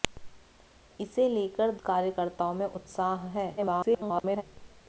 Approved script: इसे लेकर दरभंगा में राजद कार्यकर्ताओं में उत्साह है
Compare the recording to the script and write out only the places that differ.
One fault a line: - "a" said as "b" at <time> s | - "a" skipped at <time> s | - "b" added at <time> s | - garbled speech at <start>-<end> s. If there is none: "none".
- "दरभंगा में राजद" skipped at 1.7 s
- garbled speech at 3.6-4.4 s